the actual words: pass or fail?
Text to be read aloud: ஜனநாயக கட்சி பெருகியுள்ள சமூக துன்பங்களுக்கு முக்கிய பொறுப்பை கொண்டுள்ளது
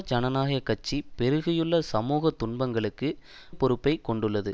fail